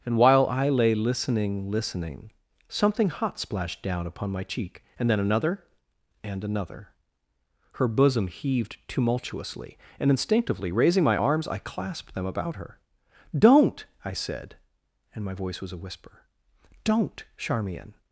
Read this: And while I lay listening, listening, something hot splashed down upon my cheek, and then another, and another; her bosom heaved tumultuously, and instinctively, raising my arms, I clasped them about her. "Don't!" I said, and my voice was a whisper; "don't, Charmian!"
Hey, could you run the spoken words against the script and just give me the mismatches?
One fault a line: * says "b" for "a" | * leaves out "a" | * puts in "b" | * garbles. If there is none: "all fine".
all fine